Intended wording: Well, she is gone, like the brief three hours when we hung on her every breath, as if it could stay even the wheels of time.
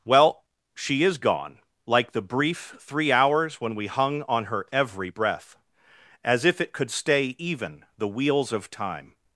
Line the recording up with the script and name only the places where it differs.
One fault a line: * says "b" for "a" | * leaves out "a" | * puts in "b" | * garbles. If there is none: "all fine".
all fine